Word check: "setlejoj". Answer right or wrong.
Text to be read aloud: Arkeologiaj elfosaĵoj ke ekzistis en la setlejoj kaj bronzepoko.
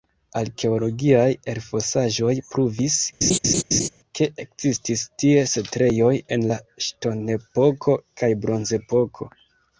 wrong